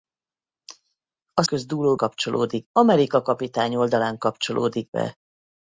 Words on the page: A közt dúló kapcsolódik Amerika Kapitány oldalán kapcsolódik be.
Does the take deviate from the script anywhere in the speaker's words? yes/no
no